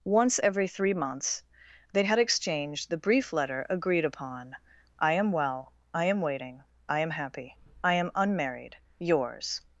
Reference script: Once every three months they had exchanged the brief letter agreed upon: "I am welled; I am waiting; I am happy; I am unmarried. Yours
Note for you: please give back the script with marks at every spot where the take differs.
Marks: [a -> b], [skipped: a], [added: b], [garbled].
Once every three months they had exchanged the brief letter agreed upon: "I am [welled; -> well] I am waiting; I am happy; I am unmarried. Yours